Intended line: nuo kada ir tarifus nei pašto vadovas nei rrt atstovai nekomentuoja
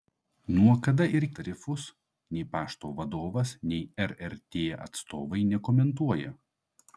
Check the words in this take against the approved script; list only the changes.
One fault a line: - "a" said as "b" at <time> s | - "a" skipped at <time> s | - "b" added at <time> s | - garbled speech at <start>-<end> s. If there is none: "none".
none